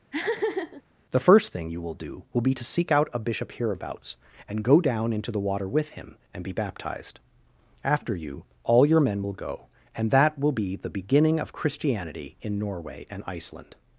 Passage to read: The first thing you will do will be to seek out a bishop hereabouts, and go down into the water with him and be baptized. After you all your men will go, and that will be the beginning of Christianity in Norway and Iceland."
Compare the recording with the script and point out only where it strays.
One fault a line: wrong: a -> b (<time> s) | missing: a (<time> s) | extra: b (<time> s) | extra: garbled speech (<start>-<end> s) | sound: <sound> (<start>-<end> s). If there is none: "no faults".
sound: laugh (0.1-0.8 s)